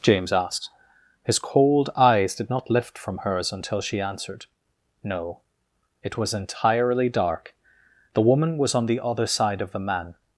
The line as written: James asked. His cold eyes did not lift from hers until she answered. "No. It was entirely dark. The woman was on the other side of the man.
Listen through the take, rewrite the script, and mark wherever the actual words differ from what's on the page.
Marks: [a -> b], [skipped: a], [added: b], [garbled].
James asked. His cold eyes did not lift from hers until she answered. "No. It was entirely dark. The woman was on the other side of the man.